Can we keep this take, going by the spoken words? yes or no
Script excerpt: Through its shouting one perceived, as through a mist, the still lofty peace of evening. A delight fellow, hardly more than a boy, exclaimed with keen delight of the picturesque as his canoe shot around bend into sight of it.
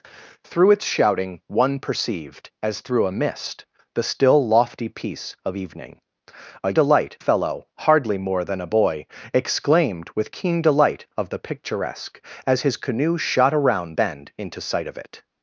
yes